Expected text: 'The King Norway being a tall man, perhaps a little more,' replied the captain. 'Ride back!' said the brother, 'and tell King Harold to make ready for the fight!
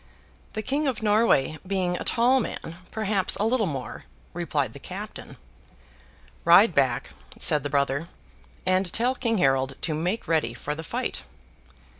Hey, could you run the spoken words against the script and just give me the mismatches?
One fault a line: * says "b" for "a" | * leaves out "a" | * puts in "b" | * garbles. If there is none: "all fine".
* puts in "of"